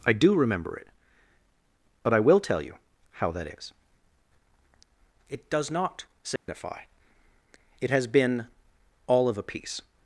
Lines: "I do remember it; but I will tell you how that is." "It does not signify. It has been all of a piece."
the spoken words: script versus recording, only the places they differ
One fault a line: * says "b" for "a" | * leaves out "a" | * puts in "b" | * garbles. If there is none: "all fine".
all fine